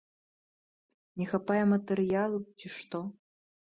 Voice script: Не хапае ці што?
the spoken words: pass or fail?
fail